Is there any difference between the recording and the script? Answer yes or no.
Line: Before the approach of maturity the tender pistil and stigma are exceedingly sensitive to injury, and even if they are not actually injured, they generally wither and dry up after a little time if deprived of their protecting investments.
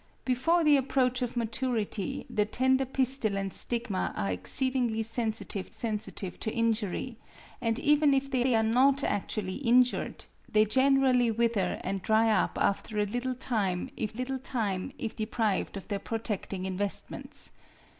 yes